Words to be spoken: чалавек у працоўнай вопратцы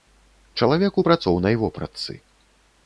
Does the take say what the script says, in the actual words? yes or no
yes